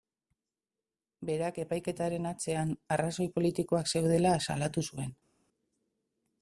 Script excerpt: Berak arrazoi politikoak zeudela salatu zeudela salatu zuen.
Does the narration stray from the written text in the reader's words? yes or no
yes